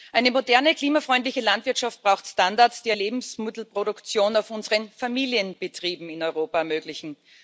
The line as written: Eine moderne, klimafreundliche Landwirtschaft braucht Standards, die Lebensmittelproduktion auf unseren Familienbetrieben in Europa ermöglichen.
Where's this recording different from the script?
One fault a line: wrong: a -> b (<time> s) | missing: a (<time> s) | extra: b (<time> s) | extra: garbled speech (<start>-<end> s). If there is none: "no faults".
no faults